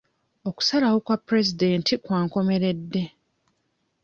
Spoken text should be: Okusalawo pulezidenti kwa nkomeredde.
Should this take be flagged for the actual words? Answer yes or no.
yes